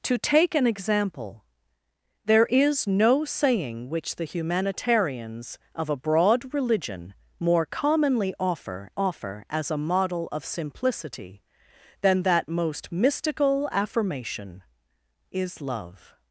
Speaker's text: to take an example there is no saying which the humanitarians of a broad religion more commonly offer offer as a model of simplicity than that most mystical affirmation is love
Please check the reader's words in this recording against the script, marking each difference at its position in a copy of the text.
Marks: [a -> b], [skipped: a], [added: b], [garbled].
to take an example there is no saying which the humanitarians of a broad religion more commonly offer offer as a model of simplicity than that most mystical affirmation is love